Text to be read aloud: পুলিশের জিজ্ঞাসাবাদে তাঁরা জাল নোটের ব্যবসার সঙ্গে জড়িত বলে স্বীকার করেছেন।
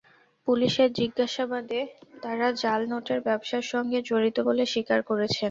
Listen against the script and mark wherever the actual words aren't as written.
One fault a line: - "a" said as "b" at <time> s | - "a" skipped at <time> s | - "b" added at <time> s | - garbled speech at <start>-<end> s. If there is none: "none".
none